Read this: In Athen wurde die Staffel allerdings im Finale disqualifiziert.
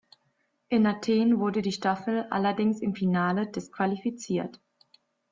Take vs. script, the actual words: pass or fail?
pass